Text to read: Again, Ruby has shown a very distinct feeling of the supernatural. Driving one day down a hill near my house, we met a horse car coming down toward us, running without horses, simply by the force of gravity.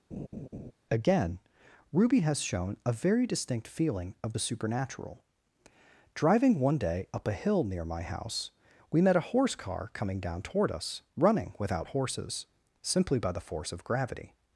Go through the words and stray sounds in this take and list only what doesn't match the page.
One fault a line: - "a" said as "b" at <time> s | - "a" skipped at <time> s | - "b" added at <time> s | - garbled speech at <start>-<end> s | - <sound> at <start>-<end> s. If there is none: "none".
- laugh at 0.1-0.7 s
- "down" said as "up" at 7.1 s